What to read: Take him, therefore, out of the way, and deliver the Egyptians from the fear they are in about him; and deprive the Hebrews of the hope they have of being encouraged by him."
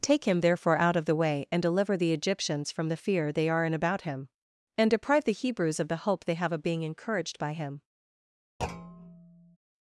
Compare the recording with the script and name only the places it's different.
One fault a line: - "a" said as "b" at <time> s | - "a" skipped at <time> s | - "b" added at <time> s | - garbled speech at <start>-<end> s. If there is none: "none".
none